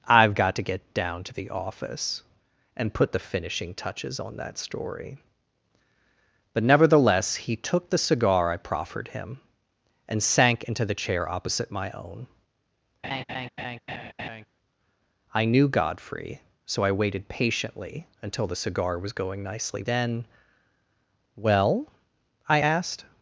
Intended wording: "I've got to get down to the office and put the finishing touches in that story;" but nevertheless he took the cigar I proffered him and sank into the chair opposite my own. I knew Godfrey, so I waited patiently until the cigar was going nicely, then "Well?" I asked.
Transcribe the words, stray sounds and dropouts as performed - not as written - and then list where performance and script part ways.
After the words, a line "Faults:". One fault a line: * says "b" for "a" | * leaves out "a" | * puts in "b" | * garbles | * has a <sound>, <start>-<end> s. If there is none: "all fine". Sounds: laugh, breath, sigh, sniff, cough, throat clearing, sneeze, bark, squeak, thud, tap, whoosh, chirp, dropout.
"I've got to get down to the office and put the finishing touches on that story;" but nevertheless he took the cigar I proffered him and sank into the chair opposite my own. I knew Godfrey, so I waited patiently until the cigar was going nicely, then "Well?" I asked.
Faults:
* says "on" for "in"
* has a laugh, 13.0-14.5 s